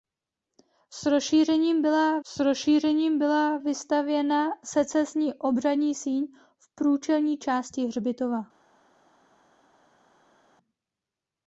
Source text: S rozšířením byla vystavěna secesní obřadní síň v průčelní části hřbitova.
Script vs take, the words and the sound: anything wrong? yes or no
yes